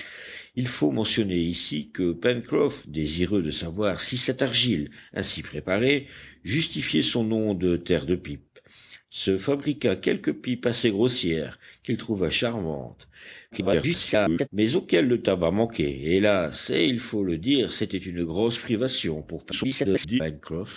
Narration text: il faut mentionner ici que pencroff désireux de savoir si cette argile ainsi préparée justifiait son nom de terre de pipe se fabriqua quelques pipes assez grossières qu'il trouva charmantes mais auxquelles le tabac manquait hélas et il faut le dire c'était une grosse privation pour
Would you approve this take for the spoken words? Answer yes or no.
no